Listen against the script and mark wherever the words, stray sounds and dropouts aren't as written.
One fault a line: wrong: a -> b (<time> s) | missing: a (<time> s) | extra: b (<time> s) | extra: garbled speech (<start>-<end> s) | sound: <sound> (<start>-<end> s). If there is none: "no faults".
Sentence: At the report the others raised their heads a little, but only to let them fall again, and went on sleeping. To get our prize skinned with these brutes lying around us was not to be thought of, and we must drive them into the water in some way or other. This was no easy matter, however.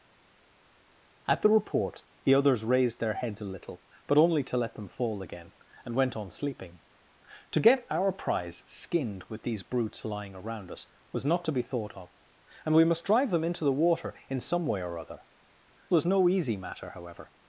missing: This (15.2 s)